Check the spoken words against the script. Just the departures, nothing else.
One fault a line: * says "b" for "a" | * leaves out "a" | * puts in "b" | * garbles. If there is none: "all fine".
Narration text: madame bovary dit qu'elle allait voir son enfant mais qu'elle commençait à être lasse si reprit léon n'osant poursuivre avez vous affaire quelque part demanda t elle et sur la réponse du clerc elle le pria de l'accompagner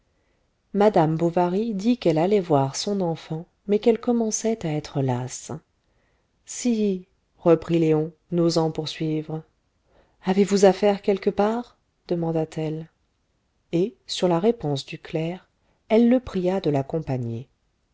all fine